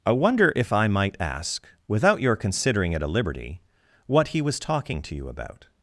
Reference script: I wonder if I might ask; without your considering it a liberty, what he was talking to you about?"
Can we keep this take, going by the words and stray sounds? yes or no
yes